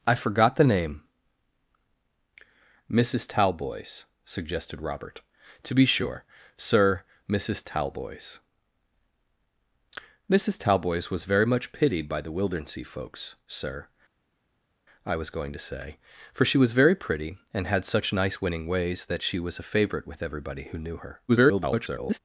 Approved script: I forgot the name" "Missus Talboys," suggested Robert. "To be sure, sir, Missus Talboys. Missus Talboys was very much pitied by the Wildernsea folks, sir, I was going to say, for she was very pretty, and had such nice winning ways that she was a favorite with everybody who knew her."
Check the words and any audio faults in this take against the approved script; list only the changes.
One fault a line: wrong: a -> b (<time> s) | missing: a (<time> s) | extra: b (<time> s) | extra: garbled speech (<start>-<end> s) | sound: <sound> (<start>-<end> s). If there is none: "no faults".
extra: garbled speech (21.3-22.2 s)